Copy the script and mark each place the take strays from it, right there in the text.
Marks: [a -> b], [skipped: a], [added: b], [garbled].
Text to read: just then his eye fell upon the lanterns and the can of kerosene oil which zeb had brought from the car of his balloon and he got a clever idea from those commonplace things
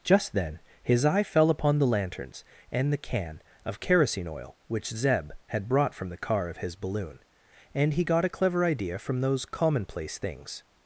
just then his eye fell upon the lanterns and the can of kerosene oil which zeb had brought from the car of his balloon and he got a clever idea from those commonplace things